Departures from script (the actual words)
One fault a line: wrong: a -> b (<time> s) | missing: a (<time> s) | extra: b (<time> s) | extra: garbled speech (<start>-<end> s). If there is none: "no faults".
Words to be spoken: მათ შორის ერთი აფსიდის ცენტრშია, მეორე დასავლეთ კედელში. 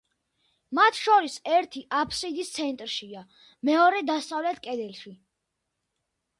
no faults